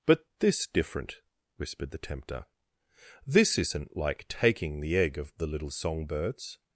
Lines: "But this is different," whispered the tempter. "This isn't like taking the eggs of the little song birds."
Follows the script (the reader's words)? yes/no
no